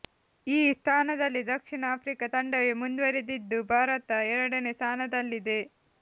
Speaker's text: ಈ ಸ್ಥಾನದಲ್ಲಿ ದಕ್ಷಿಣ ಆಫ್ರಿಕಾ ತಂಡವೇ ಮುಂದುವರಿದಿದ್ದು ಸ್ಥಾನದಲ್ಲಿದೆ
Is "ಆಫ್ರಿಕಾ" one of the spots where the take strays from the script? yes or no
no